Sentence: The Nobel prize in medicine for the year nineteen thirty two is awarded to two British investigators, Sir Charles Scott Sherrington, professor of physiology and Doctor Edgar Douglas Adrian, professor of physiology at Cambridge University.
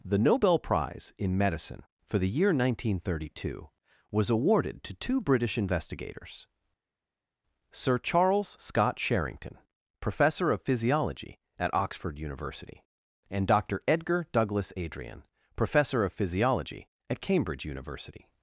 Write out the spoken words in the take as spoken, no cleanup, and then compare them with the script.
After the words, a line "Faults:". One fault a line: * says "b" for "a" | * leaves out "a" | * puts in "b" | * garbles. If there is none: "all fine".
The Nobel prize in medicine for the year nineteen thirty two was awarded to two British investigators, Sir Charles Scott Sherrington, professor of physiology at Oxford University, and Doctor Edgar Douglas Adrian, professor of physiology at Cambridge University.
Faults:
* says "was" for "is"
* puts in "at Oxford University"